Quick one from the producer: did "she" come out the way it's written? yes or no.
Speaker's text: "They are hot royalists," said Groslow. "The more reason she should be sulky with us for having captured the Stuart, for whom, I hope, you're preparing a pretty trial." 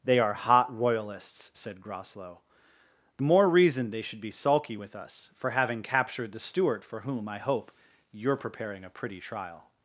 no